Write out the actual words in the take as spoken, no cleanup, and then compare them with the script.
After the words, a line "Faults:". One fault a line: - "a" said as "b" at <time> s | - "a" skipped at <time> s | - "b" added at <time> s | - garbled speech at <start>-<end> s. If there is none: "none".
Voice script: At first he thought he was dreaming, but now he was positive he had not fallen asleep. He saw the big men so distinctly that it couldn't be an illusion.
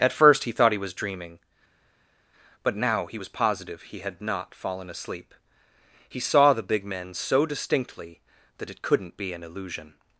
At first he thought he was dreaming, but now he was positive he had not fallen asleep. He saw the big men so distinctly that it couldn't be an illusion.
Faults:
none